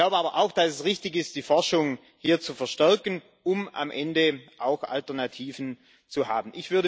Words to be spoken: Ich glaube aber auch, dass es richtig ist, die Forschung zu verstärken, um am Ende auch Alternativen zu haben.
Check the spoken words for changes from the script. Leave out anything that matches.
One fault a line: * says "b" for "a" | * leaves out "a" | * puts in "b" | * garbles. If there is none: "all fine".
* puts in "hier"